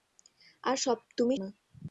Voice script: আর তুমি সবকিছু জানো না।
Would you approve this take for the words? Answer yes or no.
no